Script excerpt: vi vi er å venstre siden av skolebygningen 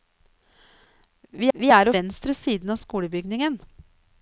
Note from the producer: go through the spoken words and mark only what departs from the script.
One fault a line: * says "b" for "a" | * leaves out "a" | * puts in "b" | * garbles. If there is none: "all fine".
all fine